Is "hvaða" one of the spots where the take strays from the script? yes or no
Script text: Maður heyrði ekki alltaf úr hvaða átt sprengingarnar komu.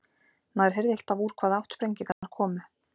no